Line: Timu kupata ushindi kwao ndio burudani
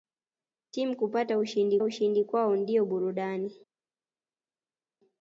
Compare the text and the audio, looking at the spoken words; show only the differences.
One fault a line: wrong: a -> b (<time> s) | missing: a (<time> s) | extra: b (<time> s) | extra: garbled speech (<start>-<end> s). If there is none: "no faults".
extra: ushindi (1.8 s)